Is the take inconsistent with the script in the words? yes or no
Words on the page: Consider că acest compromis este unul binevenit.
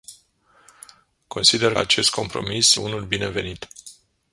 yes